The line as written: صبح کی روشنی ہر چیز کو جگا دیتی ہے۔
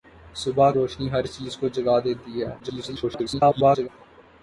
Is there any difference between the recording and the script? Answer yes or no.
yes